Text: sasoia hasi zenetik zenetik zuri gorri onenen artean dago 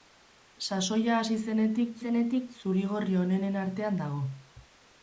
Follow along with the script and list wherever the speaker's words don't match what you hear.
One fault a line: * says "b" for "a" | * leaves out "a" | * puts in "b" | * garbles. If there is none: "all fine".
all fine